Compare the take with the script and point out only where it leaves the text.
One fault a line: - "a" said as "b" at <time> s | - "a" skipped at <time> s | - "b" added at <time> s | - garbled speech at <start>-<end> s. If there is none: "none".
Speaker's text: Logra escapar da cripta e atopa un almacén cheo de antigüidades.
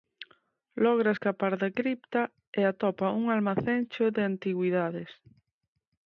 none